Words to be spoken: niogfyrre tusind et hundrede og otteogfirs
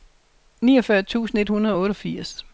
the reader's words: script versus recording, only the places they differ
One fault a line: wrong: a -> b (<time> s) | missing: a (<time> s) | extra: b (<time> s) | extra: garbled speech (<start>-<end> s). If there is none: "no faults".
no faults